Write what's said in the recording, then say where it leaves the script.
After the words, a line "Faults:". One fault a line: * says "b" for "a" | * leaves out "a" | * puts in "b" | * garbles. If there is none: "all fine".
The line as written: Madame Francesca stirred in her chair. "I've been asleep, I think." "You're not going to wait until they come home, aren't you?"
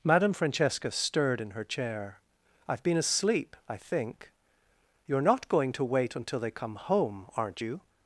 Madame Francesca stirred in her chair. "I've been asleep, I think." "You're not going to wait until they come home, aren't you?"
Faults:
all fine